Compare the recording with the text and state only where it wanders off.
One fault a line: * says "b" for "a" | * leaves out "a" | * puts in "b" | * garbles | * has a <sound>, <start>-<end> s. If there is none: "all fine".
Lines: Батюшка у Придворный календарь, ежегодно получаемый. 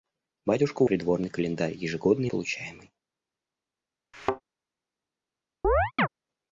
* has a thud, 4.1-4.4 s
* has a chirp, 5.6-6.1 s